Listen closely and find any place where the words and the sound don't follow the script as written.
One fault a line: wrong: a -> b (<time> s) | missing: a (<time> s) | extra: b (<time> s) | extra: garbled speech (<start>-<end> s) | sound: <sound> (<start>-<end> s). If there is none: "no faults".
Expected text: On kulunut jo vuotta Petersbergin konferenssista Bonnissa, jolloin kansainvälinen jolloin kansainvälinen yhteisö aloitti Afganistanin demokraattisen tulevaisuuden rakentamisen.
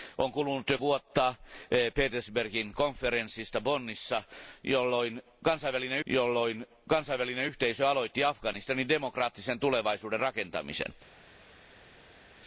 no faults